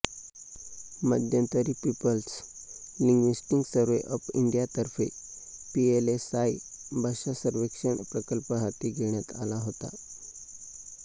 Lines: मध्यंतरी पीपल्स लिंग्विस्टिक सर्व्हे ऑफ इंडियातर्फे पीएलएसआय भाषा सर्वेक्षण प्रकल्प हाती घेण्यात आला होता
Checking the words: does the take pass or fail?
pass